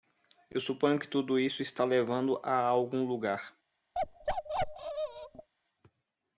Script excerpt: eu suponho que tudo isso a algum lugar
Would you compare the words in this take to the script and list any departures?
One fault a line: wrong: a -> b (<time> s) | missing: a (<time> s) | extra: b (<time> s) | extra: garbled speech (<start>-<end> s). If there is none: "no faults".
extra: está levando (1.6 s)